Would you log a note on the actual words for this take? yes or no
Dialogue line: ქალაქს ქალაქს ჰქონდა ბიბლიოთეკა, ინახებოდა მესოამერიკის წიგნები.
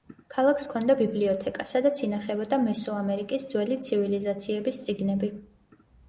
yes